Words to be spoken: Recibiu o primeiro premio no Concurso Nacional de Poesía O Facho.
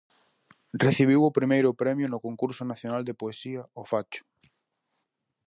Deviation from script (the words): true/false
false